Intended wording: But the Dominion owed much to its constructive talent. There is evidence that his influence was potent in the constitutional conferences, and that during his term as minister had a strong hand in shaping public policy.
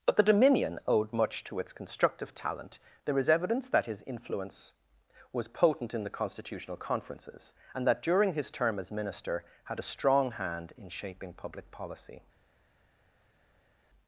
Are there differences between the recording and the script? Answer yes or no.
no